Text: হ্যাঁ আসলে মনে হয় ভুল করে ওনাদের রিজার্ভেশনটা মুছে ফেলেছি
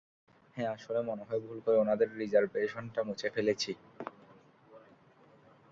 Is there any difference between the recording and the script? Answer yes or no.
no